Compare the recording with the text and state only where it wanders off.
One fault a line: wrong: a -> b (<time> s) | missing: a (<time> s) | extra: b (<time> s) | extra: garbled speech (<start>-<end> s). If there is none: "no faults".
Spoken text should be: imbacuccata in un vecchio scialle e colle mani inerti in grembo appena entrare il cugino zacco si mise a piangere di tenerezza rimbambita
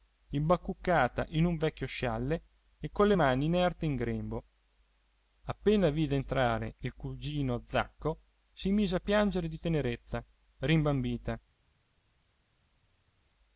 extra: vide (5.9 s)